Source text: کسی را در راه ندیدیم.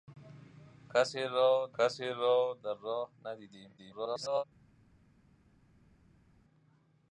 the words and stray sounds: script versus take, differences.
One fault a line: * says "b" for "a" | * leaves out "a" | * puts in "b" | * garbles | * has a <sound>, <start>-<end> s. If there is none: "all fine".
* puts in "کسی را"
* garbles